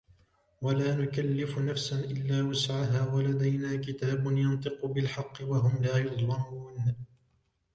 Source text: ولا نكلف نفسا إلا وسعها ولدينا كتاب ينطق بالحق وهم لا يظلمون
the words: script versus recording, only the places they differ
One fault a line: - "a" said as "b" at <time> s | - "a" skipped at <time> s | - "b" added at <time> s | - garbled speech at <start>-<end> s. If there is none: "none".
none